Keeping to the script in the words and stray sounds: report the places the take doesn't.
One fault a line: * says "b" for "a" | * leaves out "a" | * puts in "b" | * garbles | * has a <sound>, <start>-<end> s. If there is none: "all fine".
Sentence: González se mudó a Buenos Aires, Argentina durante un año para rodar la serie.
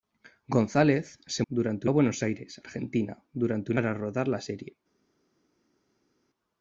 * says "durante" for "mudó"
* leaves out "año"